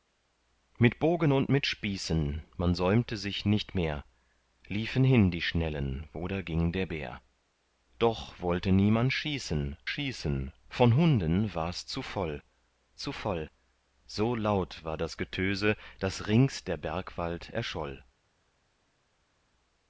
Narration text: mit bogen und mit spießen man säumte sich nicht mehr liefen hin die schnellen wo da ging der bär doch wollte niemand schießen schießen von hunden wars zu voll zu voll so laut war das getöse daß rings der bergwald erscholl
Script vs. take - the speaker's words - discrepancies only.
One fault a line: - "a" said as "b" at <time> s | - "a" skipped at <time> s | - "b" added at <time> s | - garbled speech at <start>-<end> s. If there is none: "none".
none